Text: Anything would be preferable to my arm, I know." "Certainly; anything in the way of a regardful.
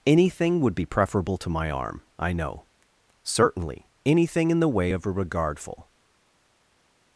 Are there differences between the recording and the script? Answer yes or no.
no